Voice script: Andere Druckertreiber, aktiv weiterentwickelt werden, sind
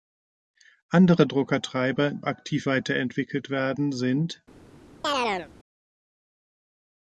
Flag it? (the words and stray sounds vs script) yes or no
yes